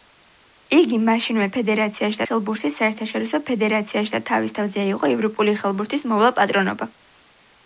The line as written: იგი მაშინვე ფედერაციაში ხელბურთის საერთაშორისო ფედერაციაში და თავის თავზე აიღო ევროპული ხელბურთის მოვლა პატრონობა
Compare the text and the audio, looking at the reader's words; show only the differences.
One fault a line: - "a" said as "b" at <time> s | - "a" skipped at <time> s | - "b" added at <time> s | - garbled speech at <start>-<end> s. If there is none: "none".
none